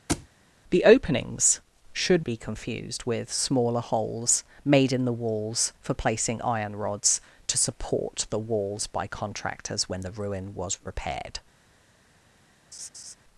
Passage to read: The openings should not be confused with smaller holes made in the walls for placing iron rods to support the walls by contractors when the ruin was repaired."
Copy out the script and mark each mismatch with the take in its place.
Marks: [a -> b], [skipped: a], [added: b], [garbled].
The openings should [skipped: not] be confused with smaller holes made in the walls for placing iron rods to support the walls by contractors when the ruin was repaired."